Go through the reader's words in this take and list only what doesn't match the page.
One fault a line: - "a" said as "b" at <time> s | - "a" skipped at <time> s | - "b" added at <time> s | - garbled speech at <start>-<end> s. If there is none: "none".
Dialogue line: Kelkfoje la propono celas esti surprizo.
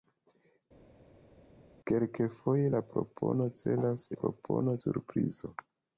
- "esti" said as "propono" at 4.2 s